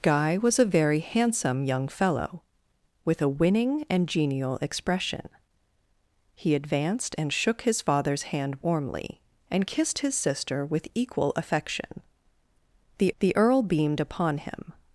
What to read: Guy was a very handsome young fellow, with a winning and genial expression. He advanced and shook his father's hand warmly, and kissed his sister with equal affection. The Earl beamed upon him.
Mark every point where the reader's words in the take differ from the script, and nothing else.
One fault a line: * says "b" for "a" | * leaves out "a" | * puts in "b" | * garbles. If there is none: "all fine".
* puts in "the"